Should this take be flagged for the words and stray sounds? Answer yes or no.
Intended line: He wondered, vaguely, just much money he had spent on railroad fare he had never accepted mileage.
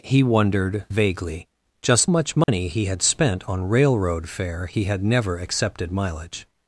yes